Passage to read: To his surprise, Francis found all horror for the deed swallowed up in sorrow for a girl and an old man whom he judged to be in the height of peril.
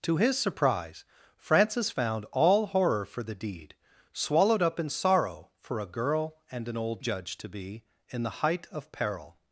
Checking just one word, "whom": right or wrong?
wrong